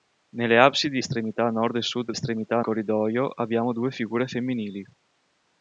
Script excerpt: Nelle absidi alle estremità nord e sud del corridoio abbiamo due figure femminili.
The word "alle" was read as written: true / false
false